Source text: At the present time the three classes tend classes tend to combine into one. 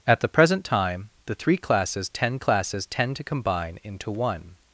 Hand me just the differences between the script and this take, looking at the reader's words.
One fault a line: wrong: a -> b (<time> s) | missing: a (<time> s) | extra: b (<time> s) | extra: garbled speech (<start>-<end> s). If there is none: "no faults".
no faults